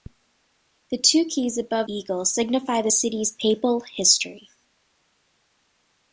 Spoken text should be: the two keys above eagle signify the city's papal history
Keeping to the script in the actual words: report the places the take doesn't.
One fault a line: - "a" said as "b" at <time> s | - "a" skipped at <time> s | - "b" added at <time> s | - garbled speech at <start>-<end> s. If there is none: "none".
none